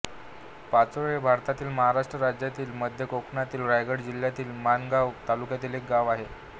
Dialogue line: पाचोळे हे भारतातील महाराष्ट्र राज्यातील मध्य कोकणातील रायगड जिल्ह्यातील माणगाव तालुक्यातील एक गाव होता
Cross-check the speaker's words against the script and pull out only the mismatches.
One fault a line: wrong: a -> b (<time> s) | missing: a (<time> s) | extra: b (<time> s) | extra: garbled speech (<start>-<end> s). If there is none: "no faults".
wrong: होता -> आहे (6.1 s)